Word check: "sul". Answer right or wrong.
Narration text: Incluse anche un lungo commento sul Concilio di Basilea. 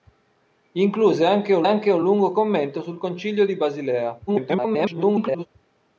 right